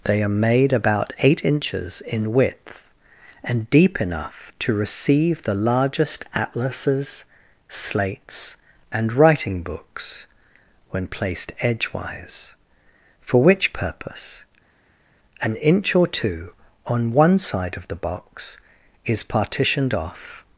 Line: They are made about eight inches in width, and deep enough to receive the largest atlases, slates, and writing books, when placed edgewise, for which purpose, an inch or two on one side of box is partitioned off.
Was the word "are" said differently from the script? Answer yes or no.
no